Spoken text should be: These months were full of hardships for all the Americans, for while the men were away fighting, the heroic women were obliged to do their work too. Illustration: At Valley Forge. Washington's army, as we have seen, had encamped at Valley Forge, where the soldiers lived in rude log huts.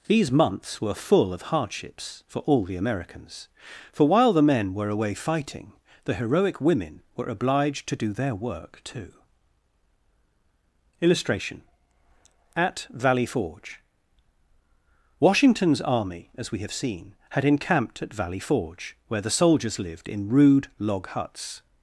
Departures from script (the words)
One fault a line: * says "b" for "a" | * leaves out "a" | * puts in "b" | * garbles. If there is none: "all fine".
all fine